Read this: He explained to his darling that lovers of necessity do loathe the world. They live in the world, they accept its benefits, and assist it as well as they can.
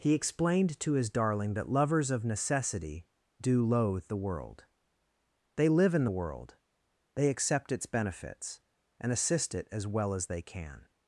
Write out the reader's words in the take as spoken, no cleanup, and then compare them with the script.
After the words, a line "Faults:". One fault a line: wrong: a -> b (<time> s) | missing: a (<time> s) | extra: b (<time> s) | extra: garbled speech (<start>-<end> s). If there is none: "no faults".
He explained to his darling that lovers of necessity do loathe the world. They live in the world, they accept its benefits, and assist it as well as they can.
Faults:
no faults